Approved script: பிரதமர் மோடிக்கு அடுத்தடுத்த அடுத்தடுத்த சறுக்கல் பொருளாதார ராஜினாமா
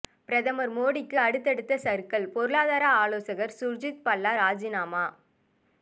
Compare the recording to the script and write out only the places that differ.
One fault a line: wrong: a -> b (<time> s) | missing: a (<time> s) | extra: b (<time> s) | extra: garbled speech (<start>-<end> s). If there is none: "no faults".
missing: அடுத்தடுத்த (1.8 s)
extra: ஆலோசகர் சுர்ஜித் பல்லா (3.0 s)